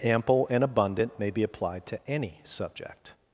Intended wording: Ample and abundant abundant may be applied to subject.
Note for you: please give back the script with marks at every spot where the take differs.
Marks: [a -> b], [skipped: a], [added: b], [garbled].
Ample and abundant [skipped: abundant] may be applied to [added: any] subject.